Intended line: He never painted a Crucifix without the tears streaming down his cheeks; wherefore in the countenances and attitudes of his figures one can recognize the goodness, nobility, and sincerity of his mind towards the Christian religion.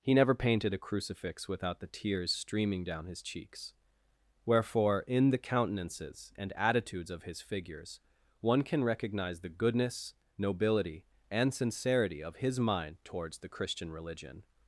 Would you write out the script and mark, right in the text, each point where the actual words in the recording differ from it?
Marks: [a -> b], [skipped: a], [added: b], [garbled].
He never painted a Crucifix without the tears streaming down his cheeks; wherefore in the countenances and attitudes of his figures one can recognize the goodness, nobility, and sincerity of his mind towards the Christian religion.